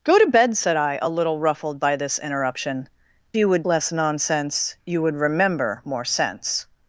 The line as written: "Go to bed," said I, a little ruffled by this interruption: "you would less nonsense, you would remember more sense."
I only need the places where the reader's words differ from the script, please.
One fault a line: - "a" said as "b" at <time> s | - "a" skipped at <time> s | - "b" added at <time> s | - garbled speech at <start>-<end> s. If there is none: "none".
none